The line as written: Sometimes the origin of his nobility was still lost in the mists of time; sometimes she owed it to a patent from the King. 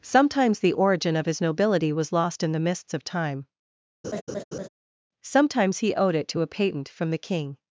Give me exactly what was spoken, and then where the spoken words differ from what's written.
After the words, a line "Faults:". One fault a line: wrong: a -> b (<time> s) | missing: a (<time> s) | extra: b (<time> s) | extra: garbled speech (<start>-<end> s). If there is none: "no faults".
Sometimes the origin of his nobility was lost in the mists of time; sometimes he owed it to a patent from the King.
Faults:
missing: still (2.1 s)
wrong: she -> he (5.8 s)